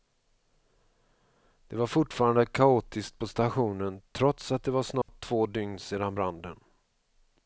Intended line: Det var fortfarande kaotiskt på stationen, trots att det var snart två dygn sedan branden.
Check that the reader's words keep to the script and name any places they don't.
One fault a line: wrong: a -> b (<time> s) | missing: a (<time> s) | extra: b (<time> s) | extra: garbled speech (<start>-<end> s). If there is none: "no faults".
no faults